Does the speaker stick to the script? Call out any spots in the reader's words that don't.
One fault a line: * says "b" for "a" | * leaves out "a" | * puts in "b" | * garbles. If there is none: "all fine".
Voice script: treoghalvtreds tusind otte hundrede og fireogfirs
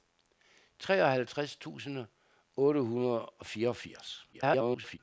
* garbles